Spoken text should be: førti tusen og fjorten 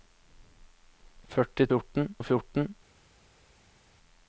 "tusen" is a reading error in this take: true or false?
true